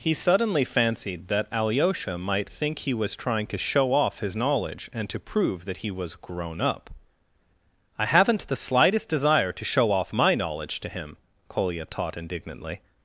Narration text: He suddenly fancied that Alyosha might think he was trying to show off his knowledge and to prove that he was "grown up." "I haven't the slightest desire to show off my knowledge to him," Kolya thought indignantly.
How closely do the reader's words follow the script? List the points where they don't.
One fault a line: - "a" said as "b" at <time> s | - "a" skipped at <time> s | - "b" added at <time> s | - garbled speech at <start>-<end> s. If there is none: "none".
- "thought" said as "taught" at 11.8 s